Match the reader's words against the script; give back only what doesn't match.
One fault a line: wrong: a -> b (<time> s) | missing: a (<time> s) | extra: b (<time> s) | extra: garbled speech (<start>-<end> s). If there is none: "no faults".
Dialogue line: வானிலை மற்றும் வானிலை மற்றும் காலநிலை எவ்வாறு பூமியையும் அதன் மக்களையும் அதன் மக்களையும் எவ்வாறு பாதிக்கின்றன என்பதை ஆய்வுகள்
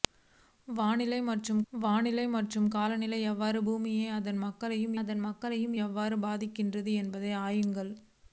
no faults